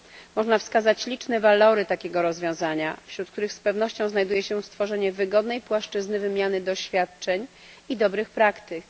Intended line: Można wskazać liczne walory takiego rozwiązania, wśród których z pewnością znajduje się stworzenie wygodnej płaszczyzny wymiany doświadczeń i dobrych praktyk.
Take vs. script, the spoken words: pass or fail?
pass